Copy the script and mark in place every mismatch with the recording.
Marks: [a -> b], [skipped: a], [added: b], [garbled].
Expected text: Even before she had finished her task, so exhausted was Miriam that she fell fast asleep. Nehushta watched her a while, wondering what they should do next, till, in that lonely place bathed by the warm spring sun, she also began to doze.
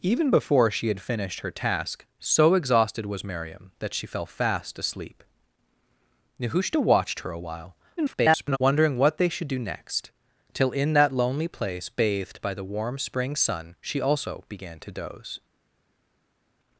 Even before she had finished her task, so exhausted was Miriam that she fell fast asleep. Nehushta watched her a while, [garbled] wondering what they should do next, till, in that lonely place bathed by the warm spring sun, she also began to doze.